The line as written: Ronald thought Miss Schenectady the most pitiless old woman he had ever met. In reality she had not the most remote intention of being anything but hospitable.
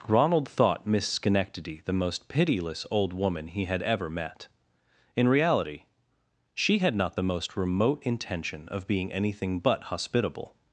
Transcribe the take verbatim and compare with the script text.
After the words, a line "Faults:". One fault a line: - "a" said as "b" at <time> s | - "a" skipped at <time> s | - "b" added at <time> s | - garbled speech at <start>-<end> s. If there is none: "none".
Ronald thought Miss Schenectady the most pitiless old woman he had ever met. In reality she had not the most remote intention of being anything but hospitable.
Faults:
none